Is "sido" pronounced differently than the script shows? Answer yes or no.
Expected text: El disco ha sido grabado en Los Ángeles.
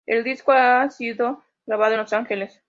no